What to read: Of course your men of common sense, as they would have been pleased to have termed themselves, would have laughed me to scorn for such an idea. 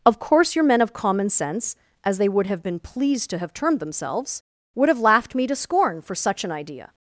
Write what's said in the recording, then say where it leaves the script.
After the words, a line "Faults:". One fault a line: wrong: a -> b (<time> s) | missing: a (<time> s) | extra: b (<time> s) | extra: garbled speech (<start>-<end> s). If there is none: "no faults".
Of course your men of common sense, as they would have been pleased to have termed themselves, would have laughed me to scorn for such an idea.
Faults:
no faults